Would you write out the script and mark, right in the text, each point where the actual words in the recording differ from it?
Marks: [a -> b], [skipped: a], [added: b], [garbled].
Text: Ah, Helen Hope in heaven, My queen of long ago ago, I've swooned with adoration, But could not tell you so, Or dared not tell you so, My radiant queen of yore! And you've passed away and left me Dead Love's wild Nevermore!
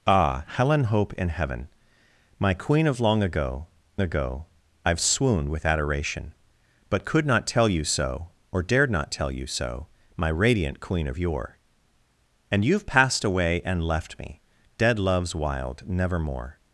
Ah, Helen Hope in heaven, My queen of long ago ago, I've swooned with adoration, But could not tell you so, Or dared not tell you so, My radiant queen of yore! And you've passed away and left me Dead Love's wild Nevermore!